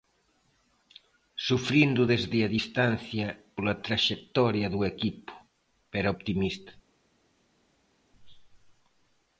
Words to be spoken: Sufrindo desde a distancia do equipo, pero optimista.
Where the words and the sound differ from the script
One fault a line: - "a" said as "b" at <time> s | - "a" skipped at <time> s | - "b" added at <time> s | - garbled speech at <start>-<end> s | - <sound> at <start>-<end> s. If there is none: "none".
- "pola traxectoria" added at 3.5 s